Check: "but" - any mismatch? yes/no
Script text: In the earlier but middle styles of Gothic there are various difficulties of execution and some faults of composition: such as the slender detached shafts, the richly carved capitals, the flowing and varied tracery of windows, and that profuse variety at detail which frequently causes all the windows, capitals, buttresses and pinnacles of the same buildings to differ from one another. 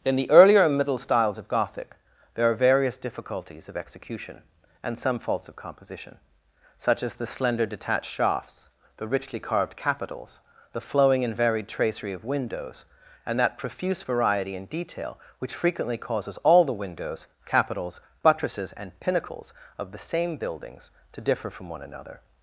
yes